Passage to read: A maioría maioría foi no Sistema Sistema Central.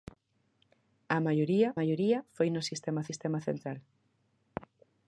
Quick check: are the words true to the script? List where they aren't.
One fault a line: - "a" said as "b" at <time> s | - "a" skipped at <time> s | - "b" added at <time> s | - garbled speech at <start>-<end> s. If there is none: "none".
none